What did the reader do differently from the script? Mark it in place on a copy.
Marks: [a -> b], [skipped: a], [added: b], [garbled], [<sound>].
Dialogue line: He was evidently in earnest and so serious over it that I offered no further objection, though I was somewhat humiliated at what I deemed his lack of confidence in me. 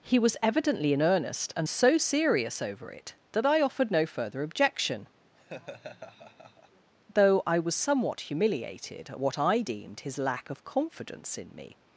He was evidently in earnest and so serious over it that I offered no further objection, [laugh] though I was somewhat humiliated at what I deemed his lack of confidence in me.